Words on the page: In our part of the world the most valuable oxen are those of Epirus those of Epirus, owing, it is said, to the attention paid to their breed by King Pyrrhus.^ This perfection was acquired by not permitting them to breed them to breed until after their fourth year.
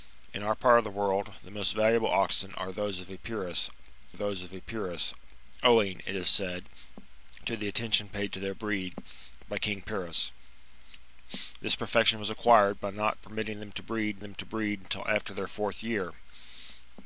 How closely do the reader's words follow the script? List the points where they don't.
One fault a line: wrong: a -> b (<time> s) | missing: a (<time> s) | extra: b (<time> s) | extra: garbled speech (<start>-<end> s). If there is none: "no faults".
no faults